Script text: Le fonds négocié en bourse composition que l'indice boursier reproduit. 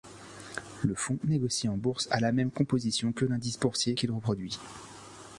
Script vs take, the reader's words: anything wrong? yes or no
yes